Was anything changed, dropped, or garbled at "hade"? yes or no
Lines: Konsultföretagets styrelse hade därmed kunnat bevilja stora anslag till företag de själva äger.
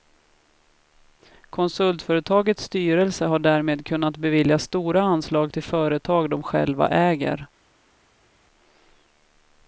yes